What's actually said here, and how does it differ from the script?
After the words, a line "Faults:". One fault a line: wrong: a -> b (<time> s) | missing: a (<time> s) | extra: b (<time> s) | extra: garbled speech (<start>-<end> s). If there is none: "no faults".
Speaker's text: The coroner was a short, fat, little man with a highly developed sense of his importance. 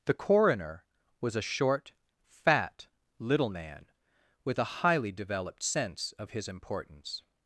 The coroner was a short, fat, little man with a highly developed sense of his importance.
Faults:
no faults